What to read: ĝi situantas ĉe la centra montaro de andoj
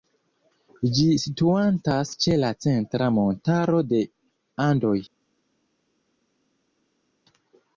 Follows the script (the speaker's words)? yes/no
yes